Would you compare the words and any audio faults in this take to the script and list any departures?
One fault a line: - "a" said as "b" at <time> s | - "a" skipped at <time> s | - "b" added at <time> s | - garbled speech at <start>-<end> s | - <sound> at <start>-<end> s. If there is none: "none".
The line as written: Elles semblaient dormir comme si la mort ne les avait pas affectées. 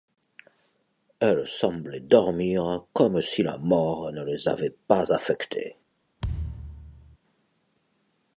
- thud at 6.2-7.2 s